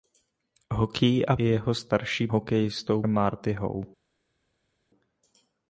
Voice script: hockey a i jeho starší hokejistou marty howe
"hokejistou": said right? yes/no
yes